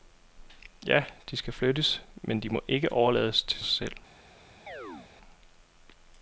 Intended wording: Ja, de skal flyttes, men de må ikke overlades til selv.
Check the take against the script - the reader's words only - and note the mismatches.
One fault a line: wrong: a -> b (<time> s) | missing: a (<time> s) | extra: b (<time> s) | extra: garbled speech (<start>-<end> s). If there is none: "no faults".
no faults